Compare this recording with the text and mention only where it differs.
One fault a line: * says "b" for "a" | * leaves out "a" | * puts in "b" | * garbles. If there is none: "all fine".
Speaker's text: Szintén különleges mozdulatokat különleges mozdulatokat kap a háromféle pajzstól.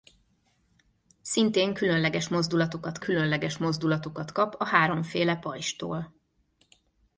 all fine